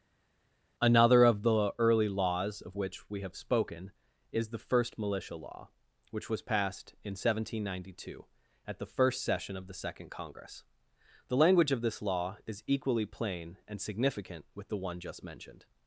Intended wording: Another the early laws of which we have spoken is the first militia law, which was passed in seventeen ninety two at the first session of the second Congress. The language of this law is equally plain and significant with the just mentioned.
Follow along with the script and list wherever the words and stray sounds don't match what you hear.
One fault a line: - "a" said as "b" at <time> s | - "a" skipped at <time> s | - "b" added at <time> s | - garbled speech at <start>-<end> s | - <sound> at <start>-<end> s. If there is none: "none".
- "of" added at 1.2 s
- "one" added at 14.8 s